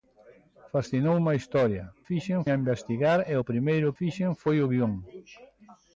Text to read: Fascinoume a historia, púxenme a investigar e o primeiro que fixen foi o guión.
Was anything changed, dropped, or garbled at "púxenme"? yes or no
yes